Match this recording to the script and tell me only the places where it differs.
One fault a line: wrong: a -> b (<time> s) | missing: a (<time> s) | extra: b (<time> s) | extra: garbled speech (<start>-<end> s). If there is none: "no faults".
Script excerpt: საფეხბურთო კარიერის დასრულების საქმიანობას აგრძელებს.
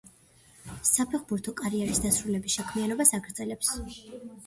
no faults